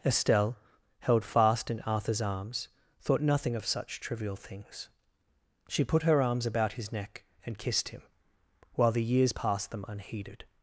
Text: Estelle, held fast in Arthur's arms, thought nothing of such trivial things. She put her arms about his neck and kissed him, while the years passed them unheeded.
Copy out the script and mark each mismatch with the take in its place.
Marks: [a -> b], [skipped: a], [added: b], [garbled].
Estelle, held fast in Arthur's arms, thought nothing of such trivial things. She put her arms about his neck and kissed him, while the years passed them unheeded.